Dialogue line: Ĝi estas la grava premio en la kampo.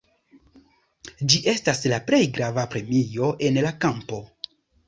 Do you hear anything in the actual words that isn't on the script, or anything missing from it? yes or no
yes